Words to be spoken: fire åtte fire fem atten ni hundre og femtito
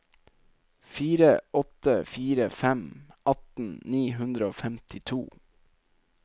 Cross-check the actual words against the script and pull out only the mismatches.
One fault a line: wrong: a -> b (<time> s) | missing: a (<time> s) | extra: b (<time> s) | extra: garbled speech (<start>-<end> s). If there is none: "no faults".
no faults